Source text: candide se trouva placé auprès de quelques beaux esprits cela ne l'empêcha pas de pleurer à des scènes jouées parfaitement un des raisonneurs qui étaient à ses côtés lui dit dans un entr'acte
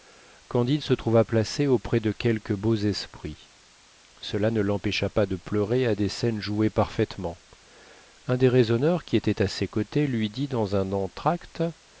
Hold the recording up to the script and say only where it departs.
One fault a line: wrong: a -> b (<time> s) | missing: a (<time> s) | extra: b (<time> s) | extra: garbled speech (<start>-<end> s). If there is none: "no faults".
no faults